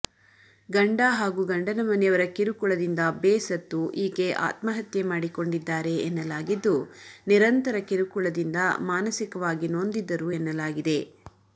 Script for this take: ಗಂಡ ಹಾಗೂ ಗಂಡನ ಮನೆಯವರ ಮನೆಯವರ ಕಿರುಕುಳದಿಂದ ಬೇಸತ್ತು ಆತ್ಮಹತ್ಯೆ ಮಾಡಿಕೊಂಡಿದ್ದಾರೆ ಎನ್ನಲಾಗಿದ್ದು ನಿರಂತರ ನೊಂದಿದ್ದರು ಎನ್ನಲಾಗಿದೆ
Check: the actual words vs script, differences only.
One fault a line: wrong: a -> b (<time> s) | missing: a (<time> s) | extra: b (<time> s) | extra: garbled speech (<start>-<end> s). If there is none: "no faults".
missing: ಮನೆಯವರ (2.2 s)
extra: ಈಕೆ (4.0 s)
extra: ಕಿರುಕುಳದಿಂದ ಮಾನಸಿಕವಾಗಿ (7.9 s)